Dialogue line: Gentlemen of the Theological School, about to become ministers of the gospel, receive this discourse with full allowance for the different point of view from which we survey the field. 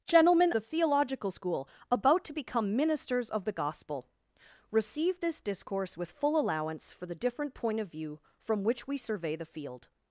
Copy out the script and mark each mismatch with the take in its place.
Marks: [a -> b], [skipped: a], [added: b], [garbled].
Gentlemen [skipped: of] the Theological School, about to become ministers of the gospel, receive this discourse with full allowance for the different point of view from which we survey the field.